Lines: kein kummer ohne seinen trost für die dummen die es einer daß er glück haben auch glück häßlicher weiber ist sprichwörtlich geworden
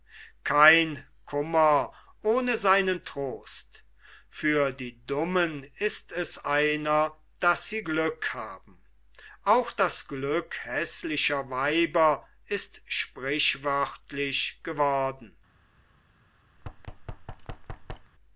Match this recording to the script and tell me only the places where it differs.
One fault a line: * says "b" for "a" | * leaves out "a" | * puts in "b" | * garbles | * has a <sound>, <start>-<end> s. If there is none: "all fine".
* says "ist" for "die"
* says "sie" for "er"
* puts in "das"
* has a thud, 16.6-18.1 s